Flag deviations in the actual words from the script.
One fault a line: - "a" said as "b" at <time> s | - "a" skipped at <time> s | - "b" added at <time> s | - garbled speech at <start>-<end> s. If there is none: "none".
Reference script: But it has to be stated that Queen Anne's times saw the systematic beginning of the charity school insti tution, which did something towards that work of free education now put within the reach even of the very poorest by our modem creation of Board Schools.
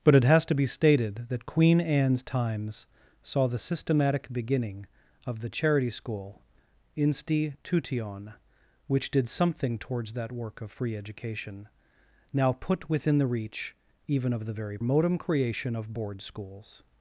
- "poorest by our" skipped at 14.8 s